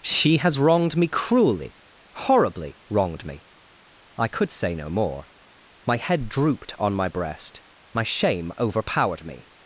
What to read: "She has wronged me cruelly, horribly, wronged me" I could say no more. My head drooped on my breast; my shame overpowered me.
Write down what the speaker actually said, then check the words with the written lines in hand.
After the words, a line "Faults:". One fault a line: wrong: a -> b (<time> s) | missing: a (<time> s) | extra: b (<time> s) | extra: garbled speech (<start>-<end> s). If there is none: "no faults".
"She has wronged me cruelly, horribly, wronged me" I could say no more. My head drooped on my breast; my shame overpowered me.
Faults:
no faults